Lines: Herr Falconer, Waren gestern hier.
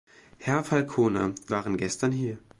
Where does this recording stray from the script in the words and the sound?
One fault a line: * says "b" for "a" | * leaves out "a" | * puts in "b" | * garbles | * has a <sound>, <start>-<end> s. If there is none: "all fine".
all fine